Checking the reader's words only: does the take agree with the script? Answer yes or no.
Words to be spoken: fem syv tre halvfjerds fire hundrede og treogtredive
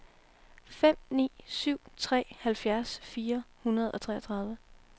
no